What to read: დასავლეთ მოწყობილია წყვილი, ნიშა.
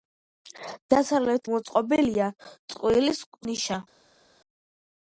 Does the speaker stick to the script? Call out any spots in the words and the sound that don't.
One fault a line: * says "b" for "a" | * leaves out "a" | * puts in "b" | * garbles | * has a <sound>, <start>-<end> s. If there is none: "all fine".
all fine